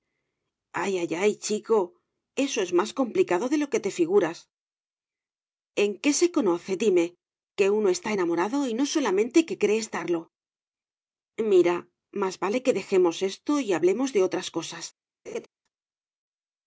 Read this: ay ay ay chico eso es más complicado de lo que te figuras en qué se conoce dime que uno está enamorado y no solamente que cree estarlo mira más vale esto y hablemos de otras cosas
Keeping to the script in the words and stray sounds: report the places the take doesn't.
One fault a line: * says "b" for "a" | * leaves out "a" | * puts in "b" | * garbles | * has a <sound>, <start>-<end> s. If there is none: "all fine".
* puts in "que dejemos"
* has a laugh, 15.3-15.5 s